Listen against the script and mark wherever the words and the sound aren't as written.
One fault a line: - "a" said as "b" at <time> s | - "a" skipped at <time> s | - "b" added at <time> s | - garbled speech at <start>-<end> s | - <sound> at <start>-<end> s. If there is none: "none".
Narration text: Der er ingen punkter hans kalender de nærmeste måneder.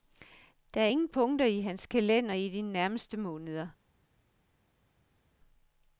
- "i" added at 1.4 s
- "i" added at 2.3 s